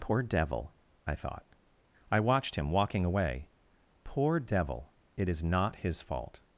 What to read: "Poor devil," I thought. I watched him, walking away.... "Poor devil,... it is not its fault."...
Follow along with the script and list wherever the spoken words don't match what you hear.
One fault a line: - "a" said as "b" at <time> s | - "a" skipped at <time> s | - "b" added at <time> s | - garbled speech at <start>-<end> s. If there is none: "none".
- "its" said as "his" at 5.7 s